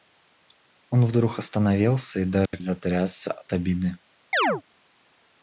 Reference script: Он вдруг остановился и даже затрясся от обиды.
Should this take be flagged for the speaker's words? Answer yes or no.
no